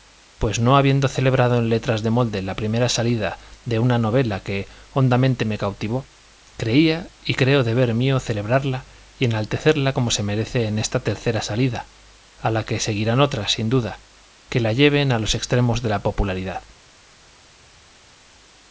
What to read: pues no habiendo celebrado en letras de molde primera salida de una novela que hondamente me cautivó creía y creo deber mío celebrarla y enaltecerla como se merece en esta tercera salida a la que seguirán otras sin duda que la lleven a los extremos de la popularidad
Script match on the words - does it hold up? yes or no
no